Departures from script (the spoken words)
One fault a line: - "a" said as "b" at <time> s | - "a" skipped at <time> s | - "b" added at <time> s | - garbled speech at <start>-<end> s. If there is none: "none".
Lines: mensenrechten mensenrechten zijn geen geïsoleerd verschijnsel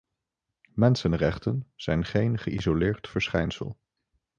- "mensenrechten" skipped at 1.7 s